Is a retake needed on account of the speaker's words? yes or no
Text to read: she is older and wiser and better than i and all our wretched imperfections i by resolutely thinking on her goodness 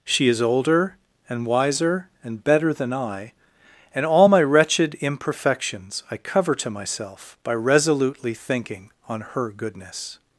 yes